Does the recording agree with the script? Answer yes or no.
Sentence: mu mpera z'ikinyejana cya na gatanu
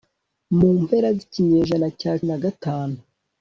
yes